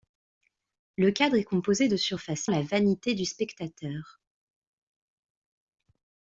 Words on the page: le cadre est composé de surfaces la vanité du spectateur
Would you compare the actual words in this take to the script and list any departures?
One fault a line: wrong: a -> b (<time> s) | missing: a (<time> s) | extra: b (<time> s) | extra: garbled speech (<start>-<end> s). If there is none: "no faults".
no faults